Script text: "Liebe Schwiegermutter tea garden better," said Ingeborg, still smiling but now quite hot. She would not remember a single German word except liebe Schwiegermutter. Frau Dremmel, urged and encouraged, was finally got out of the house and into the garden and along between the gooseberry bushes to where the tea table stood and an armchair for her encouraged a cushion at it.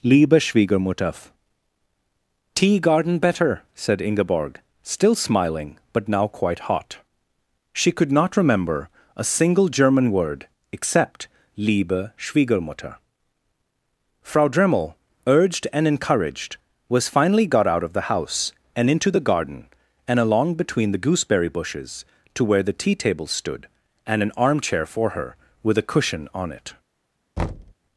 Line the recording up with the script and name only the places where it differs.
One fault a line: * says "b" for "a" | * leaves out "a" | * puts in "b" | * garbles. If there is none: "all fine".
* says "could" for "would"
* says "with" for "encouraged"
* says "on" for "at"